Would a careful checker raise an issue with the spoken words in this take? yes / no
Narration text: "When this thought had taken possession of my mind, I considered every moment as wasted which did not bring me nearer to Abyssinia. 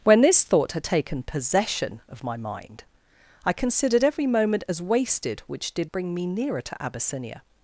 yes